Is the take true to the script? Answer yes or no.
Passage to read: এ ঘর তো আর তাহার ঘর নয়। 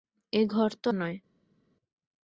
no